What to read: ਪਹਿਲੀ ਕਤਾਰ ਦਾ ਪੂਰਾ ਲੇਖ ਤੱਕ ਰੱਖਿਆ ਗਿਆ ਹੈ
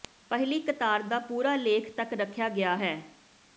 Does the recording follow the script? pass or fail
pass